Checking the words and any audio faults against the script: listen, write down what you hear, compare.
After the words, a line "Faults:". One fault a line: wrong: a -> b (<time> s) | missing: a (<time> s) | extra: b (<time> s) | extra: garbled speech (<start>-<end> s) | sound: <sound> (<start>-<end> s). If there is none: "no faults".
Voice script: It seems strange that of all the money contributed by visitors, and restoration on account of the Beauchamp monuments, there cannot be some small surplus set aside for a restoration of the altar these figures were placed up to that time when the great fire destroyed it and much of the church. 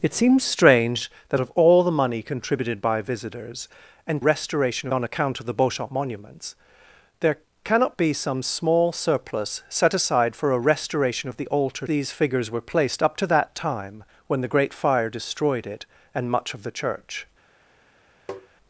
It seems strange that of all the money contributed by visitors, and restoration on account of the Beauchamp monuments, there cannot be some small surplus set aside for a restoration of the altar these figures were placed up to that time when the great fire destroyed it and much of the church.
Faults:
sound: tap (18.3-18.5 s)